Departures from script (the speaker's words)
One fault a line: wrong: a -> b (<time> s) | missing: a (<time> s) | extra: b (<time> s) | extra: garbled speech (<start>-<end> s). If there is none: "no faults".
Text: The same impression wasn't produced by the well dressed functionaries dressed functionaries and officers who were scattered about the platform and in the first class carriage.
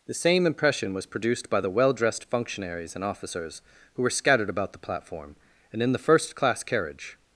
wrong: wasn't -> was (0.9 s)
missing: dressed functionaries (3.0 s)